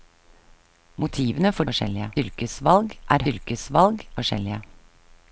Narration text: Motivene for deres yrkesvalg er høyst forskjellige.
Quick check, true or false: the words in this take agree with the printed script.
false